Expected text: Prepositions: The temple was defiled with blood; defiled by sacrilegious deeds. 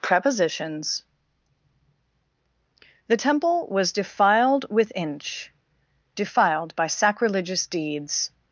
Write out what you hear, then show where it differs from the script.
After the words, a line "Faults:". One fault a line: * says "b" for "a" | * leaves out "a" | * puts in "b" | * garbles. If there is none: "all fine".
Prepositions: The temple was defiled with inch; defiled by sacrilegious deeds.
Faults:
* says "inch" for "blood"